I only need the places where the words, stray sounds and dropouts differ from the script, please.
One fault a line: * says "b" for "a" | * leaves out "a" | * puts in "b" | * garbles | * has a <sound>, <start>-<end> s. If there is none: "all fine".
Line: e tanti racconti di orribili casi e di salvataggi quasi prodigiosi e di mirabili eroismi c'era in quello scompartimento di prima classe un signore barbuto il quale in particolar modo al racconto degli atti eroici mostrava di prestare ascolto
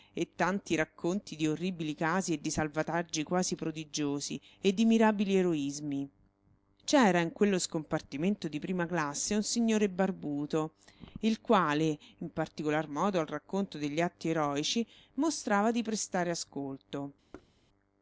* has a thud, 17.3-17.5 s